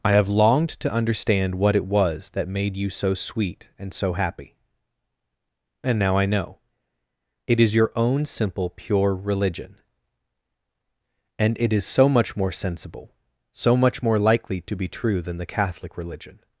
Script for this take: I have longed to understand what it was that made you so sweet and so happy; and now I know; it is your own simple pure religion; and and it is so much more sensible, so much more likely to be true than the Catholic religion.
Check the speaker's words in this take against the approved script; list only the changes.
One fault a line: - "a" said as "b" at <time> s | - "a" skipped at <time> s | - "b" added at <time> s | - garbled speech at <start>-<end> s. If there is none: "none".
- "and" skipped at 11.6 s